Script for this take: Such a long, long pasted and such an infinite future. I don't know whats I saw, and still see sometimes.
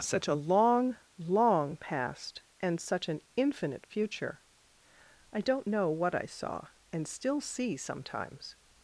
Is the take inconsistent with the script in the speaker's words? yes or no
yes